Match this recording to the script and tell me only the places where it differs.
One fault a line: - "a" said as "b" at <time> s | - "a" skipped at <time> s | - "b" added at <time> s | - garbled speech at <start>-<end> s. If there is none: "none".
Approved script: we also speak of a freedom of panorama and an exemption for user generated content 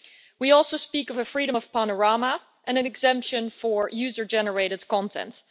none